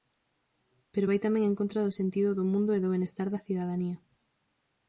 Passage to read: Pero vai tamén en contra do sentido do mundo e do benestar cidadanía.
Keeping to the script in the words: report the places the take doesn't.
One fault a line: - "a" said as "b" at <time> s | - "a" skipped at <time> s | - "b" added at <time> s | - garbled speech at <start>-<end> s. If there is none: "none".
- "da" added at 3.3 s